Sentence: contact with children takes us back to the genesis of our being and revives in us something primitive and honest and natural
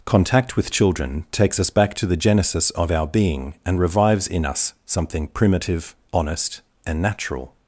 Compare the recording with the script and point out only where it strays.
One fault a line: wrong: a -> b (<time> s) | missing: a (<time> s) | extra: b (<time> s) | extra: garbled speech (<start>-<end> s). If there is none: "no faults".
missing: and (5.9 s)